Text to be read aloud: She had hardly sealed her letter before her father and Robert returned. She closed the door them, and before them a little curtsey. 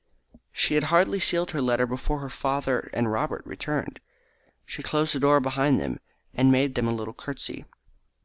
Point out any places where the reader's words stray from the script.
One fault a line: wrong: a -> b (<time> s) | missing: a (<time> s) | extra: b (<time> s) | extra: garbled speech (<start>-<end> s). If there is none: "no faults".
extra: behind (5.4 s)
wrong: before -> made (6.5 s)